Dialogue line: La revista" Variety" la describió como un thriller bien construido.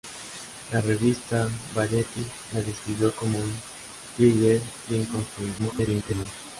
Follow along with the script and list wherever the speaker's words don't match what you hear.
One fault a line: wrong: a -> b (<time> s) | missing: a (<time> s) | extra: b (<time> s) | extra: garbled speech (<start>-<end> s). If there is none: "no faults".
extra: garbled speech (5.6-6.3 s)